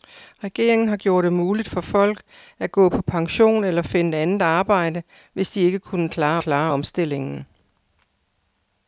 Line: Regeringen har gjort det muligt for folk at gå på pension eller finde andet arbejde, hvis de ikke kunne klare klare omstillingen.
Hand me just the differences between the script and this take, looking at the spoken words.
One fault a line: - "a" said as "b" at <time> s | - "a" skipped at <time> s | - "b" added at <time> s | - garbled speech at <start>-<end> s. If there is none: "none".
none